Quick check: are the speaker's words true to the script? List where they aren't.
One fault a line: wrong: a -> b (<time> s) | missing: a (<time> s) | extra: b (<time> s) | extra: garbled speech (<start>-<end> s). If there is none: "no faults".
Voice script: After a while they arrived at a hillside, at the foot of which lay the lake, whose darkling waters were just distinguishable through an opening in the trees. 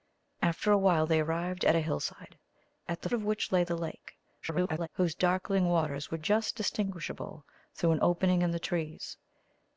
missing: foot (3.1 s)
extra: garbled speech (4.4-4.9 s)